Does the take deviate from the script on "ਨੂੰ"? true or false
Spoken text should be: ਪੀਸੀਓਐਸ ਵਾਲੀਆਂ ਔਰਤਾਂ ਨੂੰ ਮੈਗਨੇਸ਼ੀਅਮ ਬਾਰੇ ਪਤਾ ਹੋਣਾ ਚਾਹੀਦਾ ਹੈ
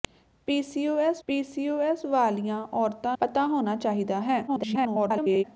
true